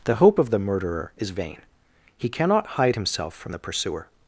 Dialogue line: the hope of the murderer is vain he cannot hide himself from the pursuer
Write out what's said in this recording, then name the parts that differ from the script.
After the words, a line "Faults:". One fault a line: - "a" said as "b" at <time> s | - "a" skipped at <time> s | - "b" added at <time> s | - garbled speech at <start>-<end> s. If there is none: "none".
the hope of the murderer is vain he cannot hide himself from the pursuer
Faults:
none